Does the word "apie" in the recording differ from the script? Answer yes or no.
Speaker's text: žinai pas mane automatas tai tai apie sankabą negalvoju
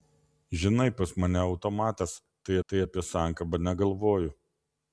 no